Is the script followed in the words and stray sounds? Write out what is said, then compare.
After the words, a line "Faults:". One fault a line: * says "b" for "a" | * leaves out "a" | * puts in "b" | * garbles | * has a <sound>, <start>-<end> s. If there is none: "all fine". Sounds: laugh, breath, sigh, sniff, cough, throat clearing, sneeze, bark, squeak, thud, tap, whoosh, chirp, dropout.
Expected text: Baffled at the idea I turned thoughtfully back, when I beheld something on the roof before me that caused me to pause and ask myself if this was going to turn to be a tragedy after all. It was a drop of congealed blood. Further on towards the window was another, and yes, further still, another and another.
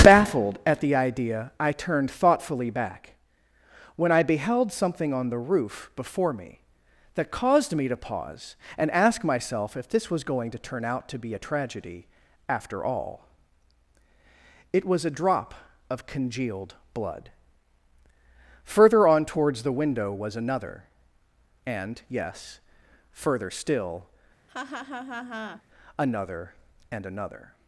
Baffled at the idea I turned thoughtfully back, when I beheld something on the roof before me that caused me to pause and ask myself if this was going to turn out to be a tragedy after all. It was a drop of congealed blood. Further on towards the window was another, and yes, further still, another and another.
Faults:
* puts in "out"
* has a laugh, 24.5-25.6 s